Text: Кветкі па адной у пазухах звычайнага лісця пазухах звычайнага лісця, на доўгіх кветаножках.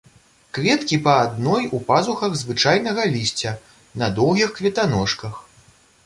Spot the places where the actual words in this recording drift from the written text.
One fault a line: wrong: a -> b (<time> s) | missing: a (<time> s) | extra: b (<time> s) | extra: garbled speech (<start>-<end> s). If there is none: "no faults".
missing: пазухах звычайнага лісця (3.5 s)